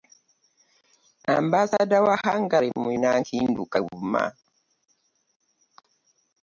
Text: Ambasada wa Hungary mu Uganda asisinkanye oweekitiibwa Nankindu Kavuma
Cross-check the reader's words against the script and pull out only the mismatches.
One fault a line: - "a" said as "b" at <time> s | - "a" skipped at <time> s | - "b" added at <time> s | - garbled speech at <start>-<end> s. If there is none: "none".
- "Uganda asisinkanye oweekitiibwa" skipped at 2.9 s